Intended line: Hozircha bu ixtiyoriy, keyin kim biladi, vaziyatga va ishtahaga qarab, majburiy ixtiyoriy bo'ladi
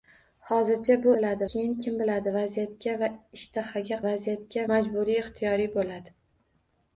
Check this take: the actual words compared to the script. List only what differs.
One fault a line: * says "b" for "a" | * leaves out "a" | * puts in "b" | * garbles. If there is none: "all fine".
* says "biladi" for "ixtiyoriy"
* says "vaziyatga" for "qarab"